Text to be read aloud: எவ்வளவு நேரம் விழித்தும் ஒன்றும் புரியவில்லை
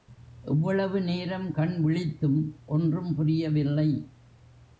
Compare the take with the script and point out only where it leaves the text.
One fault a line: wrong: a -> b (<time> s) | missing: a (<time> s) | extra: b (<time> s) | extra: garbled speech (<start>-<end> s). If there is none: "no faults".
extra: கண் (1.5 s)